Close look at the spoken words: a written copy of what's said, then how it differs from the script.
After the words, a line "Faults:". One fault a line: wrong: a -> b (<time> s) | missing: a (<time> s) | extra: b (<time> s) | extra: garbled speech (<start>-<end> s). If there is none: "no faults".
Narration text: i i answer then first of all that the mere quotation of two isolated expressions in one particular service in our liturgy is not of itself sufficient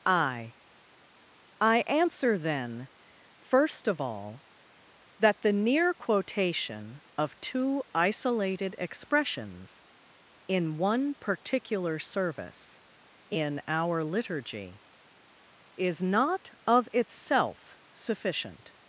i i answer then first of all that the near quotation of two isolated expressions in one particular service in our liturgy is not of itself sufficient
Faults:
wrong: mere -> near (5.5 s)